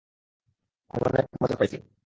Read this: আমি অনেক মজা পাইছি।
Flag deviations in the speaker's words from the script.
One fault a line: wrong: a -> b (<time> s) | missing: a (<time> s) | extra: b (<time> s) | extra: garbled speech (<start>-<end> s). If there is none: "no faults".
no faults